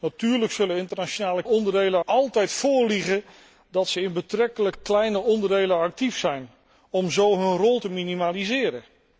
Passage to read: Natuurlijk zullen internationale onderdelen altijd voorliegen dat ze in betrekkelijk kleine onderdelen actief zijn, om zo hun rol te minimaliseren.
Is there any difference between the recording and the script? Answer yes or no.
no